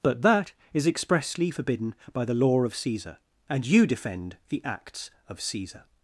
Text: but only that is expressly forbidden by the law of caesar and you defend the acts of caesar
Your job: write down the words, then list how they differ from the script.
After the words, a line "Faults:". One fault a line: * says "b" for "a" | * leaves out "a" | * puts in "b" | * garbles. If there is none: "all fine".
but that is expressly forbidden by the law of caesar and you defend the acts of caesar
Faults:
* leaves out "only"